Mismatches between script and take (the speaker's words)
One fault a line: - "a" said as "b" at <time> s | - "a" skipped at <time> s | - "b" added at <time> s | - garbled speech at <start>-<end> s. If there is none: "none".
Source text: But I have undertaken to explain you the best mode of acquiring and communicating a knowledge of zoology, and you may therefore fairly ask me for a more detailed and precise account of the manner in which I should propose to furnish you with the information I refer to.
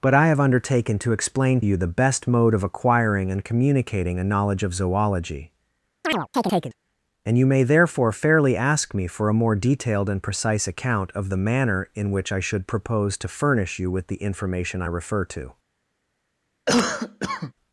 none